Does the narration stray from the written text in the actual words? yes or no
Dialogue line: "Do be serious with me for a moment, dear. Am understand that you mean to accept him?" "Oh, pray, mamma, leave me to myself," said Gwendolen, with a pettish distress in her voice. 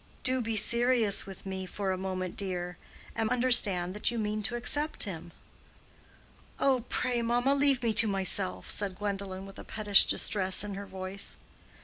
no